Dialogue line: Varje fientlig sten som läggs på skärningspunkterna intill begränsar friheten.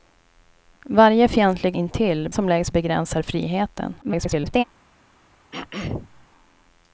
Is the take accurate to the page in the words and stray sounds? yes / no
no